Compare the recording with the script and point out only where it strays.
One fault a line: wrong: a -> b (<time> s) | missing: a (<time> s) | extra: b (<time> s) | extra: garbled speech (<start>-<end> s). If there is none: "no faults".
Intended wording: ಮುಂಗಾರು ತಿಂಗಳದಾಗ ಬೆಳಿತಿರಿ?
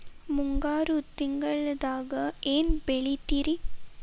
extra: ಏನ್ (2.5 s)